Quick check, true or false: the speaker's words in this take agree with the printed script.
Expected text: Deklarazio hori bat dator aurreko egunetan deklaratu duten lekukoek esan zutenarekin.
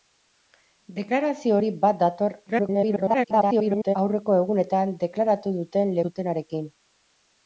false